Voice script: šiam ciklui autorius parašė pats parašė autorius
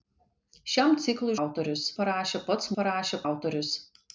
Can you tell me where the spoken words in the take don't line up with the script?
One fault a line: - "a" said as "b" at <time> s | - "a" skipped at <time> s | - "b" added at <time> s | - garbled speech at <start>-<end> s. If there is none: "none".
none